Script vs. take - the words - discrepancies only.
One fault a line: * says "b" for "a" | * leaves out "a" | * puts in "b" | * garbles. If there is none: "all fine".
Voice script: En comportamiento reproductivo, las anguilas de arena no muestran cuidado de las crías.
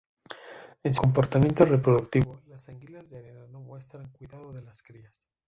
all fine